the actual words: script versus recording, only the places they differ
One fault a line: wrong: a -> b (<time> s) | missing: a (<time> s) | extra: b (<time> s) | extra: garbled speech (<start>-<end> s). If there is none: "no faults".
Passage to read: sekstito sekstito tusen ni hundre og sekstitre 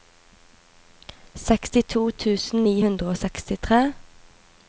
missing: sekstito (2.0 s)